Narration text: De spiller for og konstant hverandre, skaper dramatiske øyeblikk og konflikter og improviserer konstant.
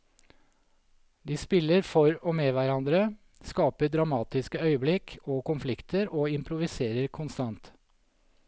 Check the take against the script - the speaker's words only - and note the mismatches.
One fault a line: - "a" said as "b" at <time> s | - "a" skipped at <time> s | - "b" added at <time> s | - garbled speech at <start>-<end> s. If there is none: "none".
- "konstant" said as "med" at 2.4 s